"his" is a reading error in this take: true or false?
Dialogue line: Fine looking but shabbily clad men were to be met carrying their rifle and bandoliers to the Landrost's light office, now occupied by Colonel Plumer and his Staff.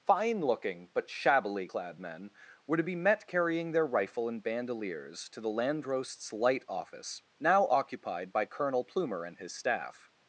false